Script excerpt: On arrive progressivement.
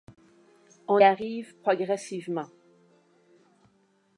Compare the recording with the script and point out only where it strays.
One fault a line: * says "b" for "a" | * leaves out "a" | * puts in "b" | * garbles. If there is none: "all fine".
all fine